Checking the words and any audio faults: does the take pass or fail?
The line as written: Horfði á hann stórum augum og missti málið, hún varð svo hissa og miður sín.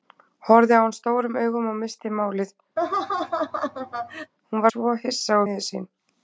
fail